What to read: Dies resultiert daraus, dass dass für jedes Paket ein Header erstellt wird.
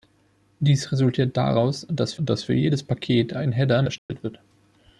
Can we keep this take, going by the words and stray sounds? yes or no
no